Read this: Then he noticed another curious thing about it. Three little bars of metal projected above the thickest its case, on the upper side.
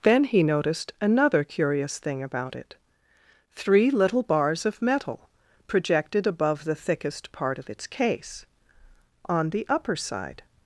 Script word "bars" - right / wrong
right